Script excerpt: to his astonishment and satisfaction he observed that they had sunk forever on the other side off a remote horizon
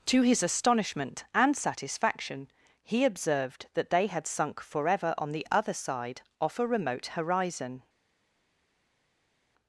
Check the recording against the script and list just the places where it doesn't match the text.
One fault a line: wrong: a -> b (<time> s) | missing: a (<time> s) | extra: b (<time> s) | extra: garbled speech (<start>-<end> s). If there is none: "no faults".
no faults